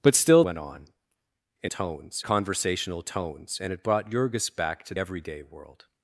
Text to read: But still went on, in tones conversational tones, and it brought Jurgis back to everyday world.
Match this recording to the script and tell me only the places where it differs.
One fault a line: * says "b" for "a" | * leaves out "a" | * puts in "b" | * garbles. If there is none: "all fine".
all fine